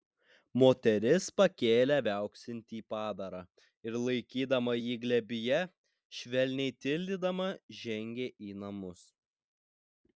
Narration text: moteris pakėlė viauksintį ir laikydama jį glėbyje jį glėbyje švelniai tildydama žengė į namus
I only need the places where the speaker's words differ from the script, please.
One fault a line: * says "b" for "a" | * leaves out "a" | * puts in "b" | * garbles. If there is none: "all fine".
* puts in "padarą"
* leaves out "jį glėbyje"